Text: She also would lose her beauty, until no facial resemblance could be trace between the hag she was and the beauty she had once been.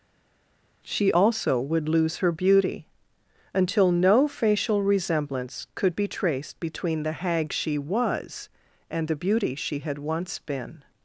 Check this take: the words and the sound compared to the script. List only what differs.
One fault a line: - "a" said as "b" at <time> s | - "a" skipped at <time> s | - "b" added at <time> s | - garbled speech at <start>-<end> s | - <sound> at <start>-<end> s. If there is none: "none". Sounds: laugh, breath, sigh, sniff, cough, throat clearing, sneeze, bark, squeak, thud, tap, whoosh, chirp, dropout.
- "trace" said as "traced" at 6.1 s